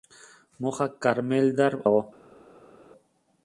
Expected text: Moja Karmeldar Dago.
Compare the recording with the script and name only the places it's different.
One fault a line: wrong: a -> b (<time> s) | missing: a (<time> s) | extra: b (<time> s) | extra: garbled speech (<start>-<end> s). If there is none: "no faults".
no faults